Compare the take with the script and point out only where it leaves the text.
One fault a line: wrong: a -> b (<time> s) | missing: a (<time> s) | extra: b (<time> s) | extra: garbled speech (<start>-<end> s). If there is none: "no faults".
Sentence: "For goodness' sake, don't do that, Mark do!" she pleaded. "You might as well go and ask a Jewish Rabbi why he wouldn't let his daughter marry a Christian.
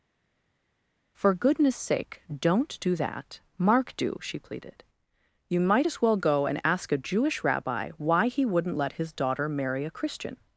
no faults